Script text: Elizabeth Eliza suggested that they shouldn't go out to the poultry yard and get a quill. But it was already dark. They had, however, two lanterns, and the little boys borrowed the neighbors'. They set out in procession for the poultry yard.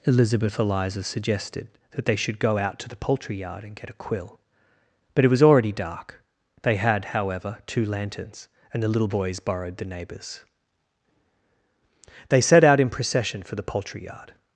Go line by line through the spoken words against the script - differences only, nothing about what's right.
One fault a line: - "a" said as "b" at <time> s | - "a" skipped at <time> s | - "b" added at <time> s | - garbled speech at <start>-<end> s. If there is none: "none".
- "shouldn't" said as "should" at 2.1 s